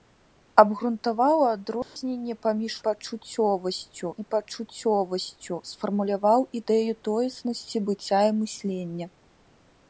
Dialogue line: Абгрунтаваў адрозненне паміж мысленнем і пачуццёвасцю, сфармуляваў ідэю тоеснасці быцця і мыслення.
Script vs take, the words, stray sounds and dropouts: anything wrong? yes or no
yes